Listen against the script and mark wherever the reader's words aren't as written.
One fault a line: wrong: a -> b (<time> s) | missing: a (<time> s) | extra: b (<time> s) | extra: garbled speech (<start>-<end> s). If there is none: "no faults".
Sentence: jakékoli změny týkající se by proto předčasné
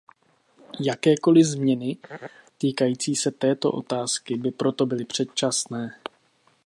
extra: této otázky (3.3 s)
extra: byly (4.8 s)